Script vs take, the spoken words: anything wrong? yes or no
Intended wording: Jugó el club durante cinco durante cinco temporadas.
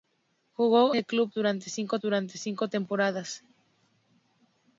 no